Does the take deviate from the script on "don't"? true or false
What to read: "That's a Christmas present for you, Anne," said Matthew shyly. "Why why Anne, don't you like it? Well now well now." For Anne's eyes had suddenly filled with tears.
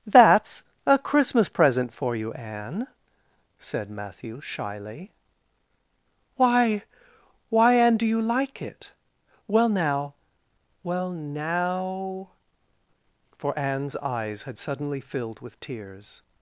true